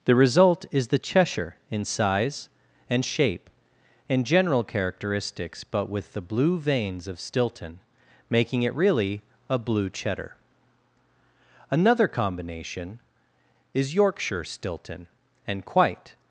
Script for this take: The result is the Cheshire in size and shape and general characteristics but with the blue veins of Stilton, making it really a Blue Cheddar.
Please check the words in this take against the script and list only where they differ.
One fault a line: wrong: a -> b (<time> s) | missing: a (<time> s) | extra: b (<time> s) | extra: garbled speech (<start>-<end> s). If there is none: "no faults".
extra: Another combination is Yorkshire Stilton and quite (11.7 s)